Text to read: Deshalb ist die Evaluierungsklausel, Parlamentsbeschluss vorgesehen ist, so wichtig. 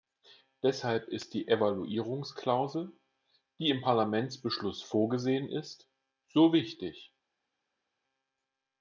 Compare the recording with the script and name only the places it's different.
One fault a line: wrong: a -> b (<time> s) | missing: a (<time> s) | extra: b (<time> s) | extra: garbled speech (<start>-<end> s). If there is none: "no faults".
extra: die im (3.6 s)